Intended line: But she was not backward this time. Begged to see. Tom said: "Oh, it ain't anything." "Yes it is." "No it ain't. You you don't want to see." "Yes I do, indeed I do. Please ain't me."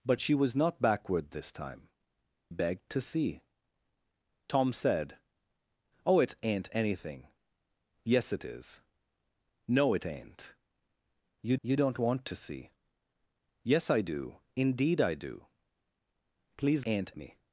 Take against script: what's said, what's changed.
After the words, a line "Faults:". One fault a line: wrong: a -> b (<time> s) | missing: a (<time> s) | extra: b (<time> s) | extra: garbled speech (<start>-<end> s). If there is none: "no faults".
But she was not backward this time. Begged to see. Tom said: "Oh, it ain't anything." "Yes it is." "No it ain't. You you don't want to see." "Yes I do, indeed I do. Please ain't me."
Faults:
no faults